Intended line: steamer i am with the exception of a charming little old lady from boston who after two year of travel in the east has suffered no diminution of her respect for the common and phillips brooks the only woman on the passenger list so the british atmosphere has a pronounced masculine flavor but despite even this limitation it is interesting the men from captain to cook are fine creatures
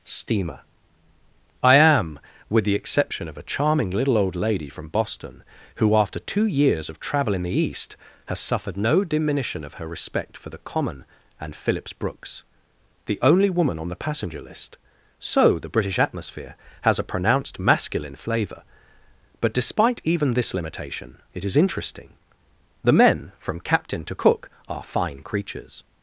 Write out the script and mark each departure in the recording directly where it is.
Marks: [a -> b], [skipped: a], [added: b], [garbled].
steamer i am with the exception of a charming little old lady from boston who after two [year -> years] of travel in the east has suffered no diminution of her respect for the common and phillips brooks the only woman on the passenger list so the british atmosphere has a pronounced masculine flavor but despite even this limitation it is interesting the men from captain to cook are fine creatures